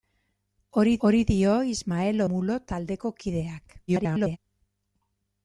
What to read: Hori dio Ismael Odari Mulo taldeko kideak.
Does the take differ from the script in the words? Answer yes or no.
yes